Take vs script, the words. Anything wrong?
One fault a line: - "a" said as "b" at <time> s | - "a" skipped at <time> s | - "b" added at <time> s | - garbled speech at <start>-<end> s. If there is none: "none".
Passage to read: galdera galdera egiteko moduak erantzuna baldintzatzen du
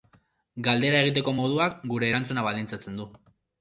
- "galdera" skipped at 1.0 s
- "gure" added at 1.9 s